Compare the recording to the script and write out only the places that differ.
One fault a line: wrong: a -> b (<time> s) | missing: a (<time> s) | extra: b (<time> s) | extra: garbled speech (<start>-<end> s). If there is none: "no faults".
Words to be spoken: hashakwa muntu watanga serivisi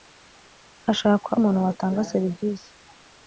no faults